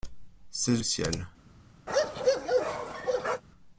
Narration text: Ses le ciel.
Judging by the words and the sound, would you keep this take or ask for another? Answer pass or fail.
fail